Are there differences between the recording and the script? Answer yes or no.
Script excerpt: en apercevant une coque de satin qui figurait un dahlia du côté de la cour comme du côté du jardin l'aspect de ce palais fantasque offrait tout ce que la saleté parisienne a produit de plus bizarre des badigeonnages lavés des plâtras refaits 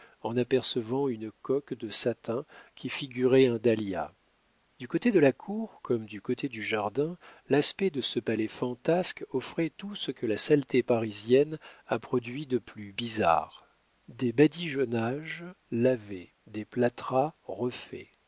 no